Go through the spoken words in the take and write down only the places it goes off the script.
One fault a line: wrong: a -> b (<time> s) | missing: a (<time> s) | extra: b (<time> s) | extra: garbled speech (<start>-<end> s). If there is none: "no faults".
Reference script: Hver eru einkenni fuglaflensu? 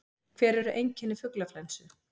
no faults